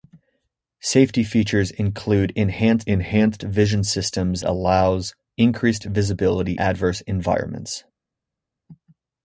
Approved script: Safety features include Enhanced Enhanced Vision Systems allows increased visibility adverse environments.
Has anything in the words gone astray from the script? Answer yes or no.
no